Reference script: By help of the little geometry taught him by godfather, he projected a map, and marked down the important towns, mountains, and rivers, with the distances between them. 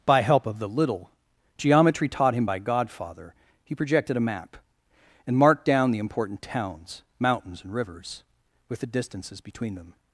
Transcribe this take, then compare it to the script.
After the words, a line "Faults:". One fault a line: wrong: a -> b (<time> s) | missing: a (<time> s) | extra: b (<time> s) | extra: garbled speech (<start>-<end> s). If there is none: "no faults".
By help of the little geometry taught him by godfather, he projected a map, and marked down the important towns, mountains, and rivers, with the distances between them.
Faults:
no faults